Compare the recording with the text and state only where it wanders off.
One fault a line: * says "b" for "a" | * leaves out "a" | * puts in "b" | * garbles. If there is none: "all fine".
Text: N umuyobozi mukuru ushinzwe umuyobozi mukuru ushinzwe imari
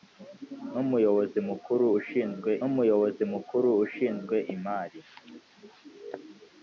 all fine